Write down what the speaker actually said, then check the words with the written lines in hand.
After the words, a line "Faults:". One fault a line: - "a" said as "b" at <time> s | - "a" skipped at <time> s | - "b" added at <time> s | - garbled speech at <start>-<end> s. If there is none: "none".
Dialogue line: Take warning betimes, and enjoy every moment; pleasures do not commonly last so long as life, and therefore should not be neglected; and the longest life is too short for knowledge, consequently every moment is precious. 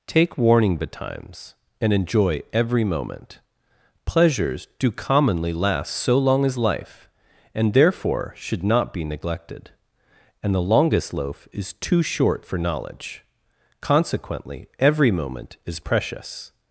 Take warning betimes, and enjoy every moment; pleasures do commonly last so long as life, and therefore should not be neglected; and the longest loaf is too short for knowledge, consequently every moment is precious.
Faults:
- "not" skipped at 4.9 s
- "life" said as "loaf" at 11.1 s